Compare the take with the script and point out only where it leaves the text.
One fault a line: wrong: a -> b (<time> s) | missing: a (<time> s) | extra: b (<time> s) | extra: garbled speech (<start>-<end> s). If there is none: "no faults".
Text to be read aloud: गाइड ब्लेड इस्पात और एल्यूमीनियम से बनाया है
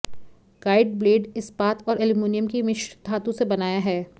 extra: की मिश्र धातु (2.5 s)